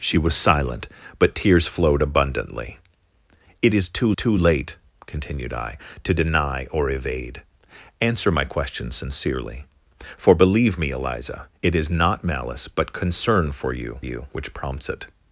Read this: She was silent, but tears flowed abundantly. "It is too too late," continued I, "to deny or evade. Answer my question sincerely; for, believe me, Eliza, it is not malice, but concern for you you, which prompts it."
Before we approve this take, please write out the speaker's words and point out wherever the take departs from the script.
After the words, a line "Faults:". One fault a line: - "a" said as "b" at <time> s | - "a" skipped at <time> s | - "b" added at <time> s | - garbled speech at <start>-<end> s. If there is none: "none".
She was silent, but tears flowed abundantly. "It is too too late," continued I, "to deny or evade. Answer my question sincerely; for, believe me, Eliza, it is not malice, but concern for you you, which prompts it."
Faults:
none